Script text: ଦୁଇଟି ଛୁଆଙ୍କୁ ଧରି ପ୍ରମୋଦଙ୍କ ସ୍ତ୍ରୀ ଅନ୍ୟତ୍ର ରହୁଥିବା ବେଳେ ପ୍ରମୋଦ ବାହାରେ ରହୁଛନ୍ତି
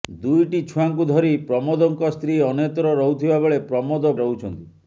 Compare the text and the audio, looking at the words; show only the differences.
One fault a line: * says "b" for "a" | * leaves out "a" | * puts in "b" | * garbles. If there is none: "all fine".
* leaves out "ବାହାରେ"